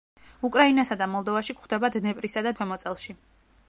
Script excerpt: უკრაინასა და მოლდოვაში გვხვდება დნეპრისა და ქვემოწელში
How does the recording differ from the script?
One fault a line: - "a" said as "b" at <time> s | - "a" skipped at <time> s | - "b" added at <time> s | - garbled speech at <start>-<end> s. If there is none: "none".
none